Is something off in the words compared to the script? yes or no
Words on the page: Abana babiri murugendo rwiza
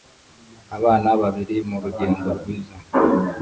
no